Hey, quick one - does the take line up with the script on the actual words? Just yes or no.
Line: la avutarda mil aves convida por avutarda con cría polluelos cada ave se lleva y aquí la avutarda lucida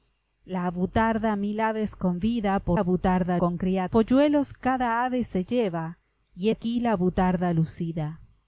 yes